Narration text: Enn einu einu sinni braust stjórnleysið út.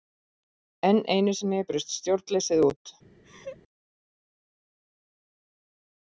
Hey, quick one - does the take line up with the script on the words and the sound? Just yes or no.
no